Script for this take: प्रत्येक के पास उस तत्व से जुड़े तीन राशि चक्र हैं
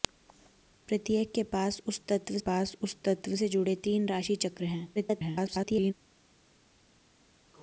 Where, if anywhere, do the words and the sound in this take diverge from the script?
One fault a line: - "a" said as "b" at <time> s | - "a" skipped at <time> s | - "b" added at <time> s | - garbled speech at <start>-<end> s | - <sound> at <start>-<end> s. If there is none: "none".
- "पास उस तत्व" added at 2.4 s
- garbled speech at 4.9-5.9 s